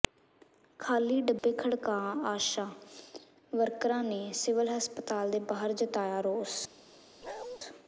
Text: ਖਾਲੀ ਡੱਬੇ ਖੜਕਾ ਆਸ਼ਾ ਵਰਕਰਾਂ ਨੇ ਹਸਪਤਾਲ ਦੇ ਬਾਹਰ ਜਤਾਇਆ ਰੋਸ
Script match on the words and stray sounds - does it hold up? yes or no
no